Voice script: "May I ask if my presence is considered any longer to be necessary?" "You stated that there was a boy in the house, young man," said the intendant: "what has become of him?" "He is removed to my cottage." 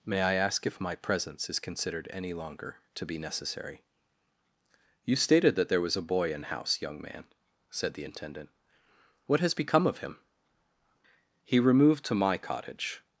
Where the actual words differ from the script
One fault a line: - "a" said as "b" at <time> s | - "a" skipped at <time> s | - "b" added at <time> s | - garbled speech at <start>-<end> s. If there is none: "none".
- "the" skipped at 6.4 s
- "is" skipped at 11.6 s